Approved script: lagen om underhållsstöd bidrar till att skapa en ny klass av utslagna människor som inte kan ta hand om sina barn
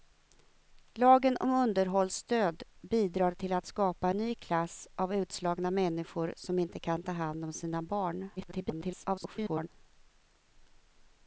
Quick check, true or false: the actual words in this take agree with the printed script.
false